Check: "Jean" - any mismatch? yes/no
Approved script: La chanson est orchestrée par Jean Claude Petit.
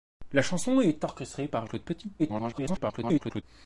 yes